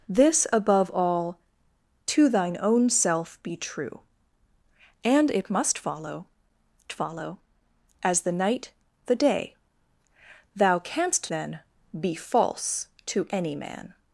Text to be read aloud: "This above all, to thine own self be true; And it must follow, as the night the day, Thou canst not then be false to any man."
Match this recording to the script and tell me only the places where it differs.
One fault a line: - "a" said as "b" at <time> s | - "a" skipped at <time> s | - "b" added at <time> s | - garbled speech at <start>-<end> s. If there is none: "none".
- "follow" added at 6.9 s
- "not" skipped at 11.3 s